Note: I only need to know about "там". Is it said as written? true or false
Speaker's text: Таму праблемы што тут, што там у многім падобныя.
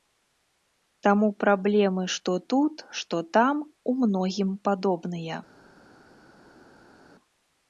true